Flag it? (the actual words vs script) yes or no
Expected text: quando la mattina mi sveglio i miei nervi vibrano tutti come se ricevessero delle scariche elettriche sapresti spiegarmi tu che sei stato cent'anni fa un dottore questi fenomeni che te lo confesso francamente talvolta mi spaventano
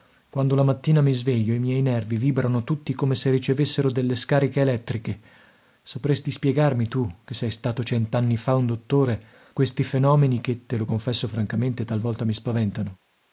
no